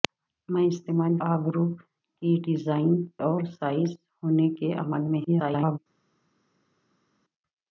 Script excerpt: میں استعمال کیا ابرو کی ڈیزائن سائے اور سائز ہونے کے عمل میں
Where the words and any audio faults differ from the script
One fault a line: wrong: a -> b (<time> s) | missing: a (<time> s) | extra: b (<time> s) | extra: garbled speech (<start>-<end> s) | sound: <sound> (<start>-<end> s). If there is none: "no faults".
missing: کیا (1.1 s)
missing: سائے (2.9 s)
extra: garbled speech (5.3-5.8 s)